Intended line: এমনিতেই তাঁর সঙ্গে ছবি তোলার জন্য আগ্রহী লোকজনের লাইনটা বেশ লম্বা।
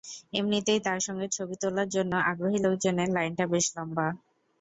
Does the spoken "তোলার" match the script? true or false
true